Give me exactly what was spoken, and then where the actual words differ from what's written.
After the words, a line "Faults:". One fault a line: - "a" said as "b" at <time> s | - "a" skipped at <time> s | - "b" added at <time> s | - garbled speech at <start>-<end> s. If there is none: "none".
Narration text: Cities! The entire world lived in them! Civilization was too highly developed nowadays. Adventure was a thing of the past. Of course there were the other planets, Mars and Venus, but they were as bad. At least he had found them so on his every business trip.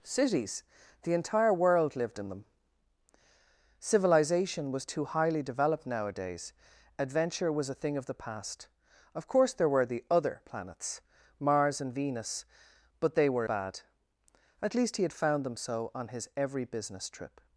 Cities! The entire world lived in them! Civilization was too highly developed nowadays. Adventure was a thing of the past. Of course there were the other planets, Mars and Venus, but they were bad. At least he had found them so on his every business trip.
Faults:
- "as" skipped at 13.4 s